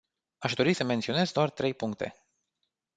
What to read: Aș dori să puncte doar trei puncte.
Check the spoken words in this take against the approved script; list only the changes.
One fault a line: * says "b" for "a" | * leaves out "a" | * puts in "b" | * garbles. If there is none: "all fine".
* says "menționez" for "puncte"